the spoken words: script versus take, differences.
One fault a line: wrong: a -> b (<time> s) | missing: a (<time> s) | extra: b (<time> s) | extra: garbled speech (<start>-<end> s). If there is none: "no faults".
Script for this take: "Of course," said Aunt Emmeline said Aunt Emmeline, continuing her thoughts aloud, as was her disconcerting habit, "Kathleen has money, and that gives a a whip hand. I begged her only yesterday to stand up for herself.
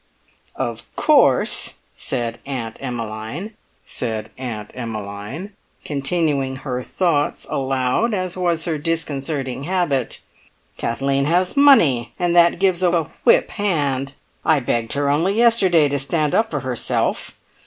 no faults